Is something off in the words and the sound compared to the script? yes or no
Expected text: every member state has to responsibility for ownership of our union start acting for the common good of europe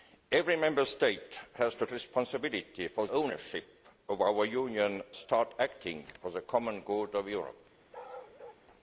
yes